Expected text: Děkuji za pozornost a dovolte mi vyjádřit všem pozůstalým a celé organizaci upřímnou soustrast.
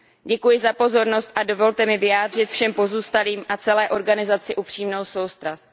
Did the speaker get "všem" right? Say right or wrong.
right